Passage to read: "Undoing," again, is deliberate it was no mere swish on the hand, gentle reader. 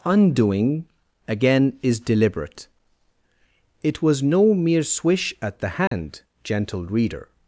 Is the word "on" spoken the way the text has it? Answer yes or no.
no